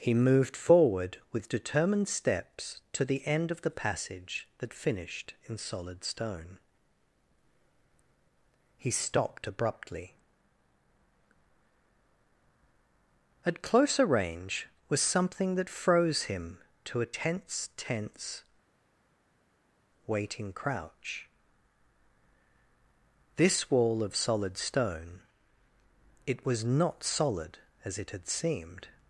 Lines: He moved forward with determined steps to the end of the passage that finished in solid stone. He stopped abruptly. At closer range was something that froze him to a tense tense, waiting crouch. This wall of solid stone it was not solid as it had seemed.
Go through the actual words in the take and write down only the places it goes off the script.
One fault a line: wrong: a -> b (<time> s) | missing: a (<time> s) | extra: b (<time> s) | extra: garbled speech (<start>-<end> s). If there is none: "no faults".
no faults